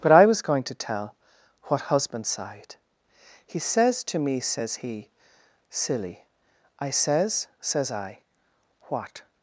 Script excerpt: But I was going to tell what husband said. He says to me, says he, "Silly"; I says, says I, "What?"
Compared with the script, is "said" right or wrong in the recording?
wrong